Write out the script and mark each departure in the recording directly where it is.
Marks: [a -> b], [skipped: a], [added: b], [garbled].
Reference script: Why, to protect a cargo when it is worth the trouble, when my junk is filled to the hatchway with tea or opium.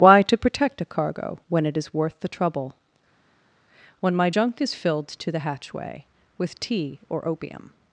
Why, to protect a cargo when it is worth the trouble, when my junk is filled to the hatchway with tea or opium.